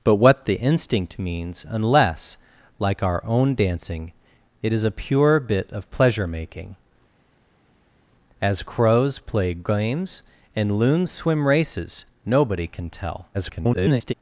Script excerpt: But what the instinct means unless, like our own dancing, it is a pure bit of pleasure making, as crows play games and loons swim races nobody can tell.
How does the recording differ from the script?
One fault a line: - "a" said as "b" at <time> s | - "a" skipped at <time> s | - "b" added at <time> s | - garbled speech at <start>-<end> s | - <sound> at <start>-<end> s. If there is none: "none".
- garbled speech at 13.3-14.1 s